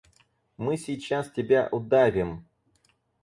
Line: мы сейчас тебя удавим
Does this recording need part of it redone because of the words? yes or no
no